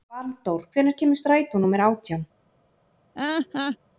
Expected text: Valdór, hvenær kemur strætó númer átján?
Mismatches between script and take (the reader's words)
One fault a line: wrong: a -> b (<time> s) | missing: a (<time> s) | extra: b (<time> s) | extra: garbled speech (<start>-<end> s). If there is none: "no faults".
no faults